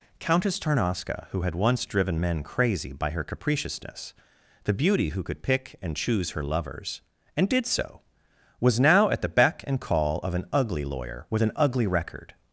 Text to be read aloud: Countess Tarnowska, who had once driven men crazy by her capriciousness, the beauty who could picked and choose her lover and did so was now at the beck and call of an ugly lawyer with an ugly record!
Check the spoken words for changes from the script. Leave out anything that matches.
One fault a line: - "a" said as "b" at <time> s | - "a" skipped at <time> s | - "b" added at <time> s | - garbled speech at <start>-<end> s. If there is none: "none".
- "picked" said as "pick" at 5.4 s
- "lover" said as "lovers" at 6.4 s